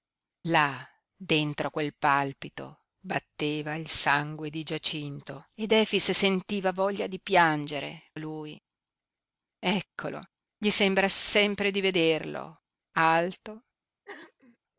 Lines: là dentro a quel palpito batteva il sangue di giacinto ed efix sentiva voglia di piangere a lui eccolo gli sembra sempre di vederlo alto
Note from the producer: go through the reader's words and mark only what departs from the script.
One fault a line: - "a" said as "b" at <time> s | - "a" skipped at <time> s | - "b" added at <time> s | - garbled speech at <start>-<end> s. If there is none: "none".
none